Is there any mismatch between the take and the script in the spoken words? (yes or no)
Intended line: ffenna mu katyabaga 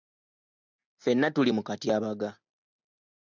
yes